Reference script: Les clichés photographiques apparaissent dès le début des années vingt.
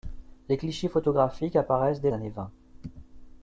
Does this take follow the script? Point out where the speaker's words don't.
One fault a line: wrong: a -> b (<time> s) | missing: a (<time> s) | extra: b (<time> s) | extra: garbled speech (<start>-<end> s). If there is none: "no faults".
missing: le début des (2.1 s)